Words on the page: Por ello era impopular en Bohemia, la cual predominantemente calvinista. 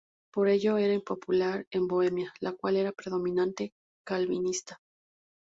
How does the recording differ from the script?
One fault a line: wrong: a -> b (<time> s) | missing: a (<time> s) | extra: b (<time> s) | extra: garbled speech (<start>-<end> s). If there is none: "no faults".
extra: era (2.8 s)